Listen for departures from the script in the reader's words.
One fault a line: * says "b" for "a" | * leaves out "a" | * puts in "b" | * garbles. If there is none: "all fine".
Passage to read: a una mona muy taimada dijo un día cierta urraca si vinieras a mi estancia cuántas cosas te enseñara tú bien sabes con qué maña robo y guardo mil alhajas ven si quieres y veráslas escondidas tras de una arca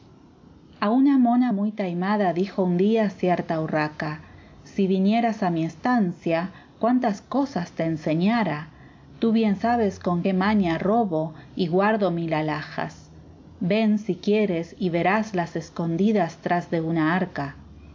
all fine